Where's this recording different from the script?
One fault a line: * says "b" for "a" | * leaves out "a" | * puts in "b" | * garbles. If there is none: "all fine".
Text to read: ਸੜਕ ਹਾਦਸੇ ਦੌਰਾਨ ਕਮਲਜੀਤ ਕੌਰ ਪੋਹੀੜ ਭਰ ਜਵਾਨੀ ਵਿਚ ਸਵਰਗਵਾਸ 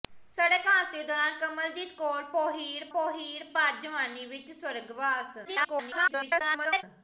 * puts in "ਪੋਹੀੜ"
* garbles